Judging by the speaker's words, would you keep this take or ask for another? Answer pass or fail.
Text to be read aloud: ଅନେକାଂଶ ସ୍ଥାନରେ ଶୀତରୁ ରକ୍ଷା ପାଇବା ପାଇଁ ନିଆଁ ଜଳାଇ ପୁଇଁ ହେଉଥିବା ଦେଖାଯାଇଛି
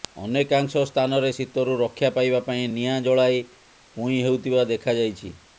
pass